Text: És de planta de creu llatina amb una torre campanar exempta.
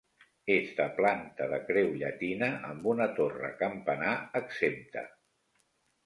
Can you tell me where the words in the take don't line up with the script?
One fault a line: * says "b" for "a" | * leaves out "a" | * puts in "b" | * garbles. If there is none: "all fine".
all fine